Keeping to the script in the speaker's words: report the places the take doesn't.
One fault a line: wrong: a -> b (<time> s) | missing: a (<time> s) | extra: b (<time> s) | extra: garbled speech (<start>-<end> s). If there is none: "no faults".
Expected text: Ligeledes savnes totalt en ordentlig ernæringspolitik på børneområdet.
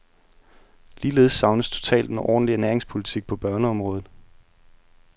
no faults